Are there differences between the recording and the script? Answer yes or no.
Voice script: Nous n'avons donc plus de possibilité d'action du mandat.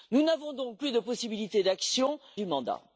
no